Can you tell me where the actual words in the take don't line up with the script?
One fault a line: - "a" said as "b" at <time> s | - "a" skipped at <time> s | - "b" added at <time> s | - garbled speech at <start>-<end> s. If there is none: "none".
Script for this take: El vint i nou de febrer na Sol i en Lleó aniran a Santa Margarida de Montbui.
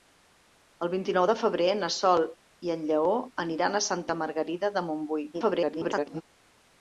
- garbled speech at 5.3-6.2 s